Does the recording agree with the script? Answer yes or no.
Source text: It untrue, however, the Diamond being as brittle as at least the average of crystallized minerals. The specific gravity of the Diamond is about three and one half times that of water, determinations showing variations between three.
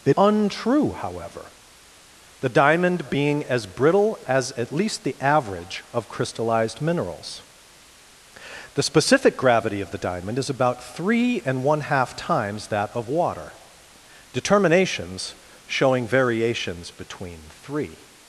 yes